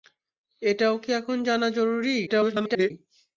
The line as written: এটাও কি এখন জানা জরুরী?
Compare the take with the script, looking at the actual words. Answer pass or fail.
fail